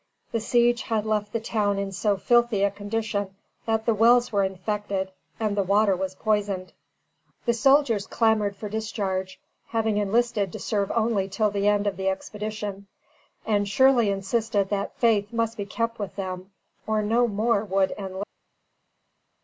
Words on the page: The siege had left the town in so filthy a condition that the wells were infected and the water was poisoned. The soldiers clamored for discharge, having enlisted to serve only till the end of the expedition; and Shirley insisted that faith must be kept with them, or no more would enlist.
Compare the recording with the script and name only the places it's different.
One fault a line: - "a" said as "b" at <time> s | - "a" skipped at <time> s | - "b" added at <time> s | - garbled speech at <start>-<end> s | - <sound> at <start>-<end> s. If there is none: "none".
none